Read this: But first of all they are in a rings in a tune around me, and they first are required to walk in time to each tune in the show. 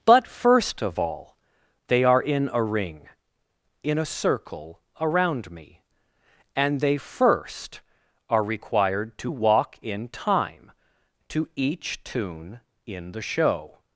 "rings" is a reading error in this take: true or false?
true